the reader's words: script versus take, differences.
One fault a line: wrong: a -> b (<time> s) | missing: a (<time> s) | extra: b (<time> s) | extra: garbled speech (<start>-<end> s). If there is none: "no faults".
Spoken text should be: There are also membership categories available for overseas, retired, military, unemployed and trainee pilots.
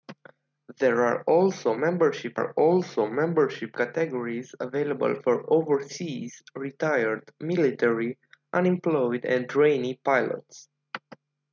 extra: are also membership (2.3 s)